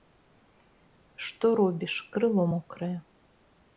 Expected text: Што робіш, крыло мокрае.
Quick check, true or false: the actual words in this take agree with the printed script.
true